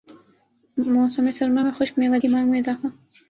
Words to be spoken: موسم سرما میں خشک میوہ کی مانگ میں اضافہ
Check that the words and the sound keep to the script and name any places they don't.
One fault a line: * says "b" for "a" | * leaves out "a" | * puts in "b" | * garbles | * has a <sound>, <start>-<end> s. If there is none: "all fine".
all fine